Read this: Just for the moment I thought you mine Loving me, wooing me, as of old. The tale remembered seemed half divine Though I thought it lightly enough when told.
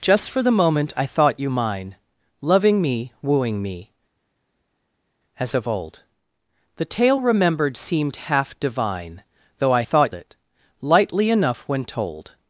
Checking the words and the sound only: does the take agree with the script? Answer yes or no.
yes